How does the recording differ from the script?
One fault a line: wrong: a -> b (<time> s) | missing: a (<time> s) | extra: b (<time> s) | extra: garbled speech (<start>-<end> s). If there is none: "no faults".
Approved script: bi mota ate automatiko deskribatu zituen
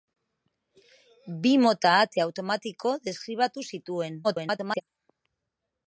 extra: garbled speech (4.2-4.8 s)